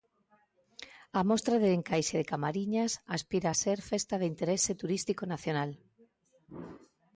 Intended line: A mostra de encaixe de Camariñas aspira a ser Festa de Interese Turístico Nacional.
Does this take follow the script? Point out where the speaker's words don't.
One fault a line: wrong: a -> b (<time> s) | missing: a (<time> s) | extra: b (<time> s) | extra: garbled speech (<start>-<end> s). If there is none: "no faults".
no faults